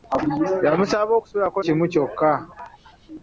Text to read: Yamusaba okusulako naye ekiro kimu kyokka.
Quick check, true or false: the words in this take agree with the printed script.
false